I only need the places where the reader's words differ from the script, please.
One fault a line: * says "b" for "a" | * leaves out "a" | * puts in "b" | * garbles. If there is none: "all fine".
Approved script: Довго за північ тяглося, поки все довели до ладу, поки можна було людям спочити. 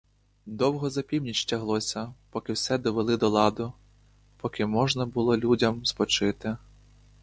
all fine